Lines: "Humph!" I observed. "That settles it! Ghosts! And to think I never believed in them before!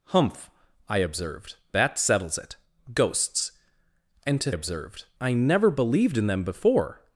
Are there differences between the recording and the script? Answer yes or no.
yes